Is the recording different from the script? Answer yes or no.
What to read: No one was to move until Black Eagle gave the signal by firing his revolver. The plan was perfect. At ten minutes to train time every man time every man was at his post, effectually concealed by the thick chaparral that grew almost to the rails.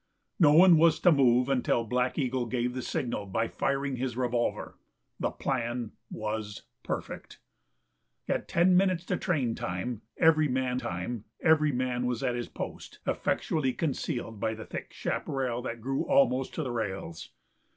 no